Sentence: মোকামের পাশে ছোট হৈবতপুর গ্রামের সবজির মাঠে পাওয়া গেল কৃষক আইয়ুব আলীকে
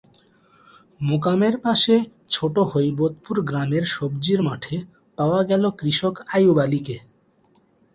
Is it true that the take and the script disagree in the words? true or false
false